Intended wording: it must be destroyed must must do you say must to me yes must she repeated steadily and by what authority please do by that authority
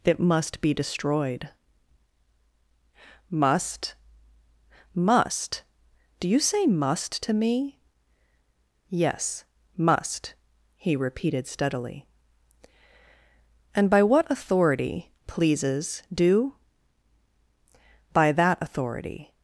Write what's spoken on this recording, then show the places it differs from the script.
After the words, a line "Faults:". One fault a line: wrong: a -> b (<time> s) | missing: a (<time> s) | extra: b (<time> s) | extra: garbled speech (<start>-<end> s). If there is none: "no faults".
it must be destroyed must must do you say must to me yes must he repeated steadily and by what authority pleases do by that authority
Faults:
wrong: she -> he (10.8 s)
wrong: please -> pleases (15.3 s)